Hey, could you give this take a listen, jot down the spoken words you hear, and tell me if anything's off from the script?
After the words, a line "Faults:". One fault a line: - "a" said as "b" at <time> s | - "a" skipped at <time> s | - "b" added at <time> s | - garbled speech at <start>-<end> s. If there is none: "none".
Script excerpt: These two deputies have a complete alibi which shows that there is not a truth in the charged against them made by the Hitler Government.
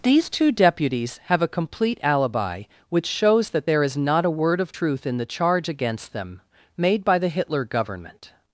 These two deputies have a complete alibi which shows that there is not a word of truth in the charge against them made by the Hitler Government.
Faults:
- "word of" added at 4.3 s
- "charged" said as "charge" at 5.2 s